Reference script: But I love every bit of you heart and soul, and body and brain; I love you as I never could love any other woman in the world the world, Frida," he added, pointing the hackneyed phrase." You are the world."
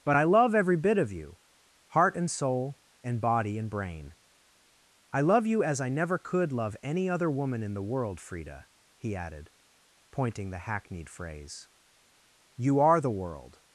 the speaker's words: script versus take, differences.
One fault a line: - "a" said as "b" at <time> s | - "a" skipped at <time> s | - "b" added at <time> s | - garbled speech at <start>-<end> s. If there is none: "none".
- "the world" skipped at 8.2 s